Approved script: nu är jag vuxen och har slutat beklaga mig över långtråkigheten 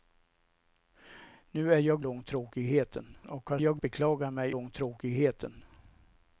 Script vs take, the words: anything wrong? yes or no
yes